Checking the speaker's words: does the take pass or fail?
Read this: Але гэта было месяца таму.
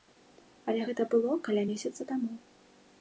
fail